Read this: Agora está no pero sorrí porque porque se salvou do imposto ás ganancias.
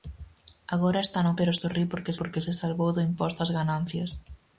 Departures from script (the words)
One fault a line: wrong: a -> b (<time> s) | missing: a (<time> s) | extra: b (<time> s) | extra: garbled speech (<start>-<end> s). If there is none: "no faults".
no faults